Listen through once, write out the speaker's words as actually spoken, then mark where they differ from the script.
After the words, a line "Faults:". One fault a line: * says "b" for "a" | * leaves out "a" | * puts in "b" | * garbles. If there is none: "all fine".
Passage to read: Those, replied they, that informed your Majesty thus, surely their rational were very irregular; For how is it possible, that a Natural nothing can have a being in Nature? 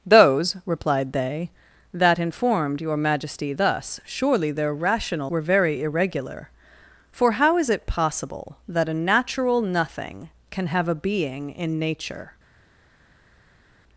Those, replied they, that informed your Majesty thus, surely their rational were very irregular; For how is it possible, that a Natural nothing can have a being in Nature?
Faults:
all fine